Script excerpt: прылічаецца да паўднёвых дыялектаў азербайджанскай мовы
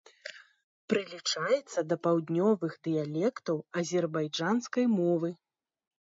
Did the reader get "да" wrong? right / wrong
right